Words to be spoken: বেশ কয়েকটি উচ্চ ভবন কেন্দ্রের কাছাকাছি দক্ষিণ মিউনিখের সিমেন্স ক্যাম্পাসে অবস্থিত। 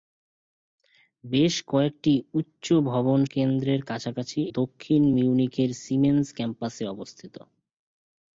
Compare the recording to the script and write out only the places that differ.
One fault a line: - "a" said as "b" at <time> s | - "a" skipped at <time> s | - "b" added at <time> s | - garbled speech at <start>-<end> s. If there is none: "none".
none